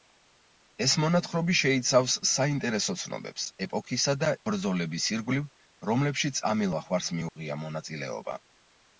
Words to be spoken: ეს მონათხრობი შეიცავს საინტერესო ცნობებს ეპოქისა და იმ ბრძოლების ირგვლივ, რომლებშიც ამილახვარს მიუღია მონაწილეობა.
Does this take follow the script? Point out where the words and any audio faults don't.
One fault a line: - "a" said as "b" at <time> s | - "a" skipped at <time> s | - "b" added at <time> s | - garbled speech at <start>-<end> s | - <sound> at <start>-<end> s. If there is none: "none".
- "იმ" skipped at 4.3 s
- dropout at 7.3-7.4 s